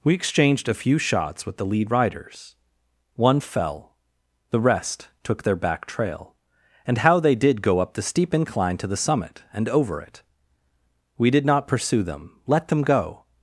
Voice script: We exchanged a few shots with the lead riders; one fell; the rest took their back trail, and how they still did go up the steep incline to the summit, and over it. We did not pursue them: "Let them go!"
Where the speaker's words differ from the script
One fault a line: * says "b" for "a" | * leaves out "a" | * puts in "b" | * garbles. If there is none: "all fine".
* leaves out "still"